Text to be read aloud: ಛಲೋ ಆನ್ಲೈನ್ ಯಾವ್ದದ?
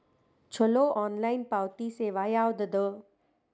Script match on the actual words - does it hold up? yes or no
no